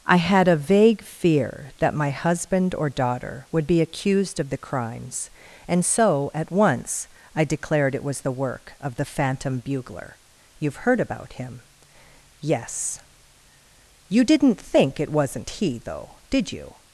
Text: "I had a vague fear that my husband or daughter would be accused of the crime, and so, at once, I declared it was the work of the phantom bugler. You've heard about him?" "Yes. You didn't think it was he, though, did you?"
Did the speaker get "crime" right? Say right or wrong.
wrong